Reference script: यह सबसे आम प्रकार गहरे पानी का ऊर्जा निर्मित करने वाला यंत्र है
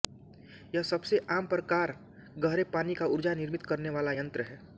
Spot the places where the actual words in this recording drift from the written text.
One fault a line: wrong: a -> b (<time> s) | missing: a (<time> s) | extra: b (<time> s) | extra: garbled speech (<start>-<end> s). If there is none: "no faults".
no faults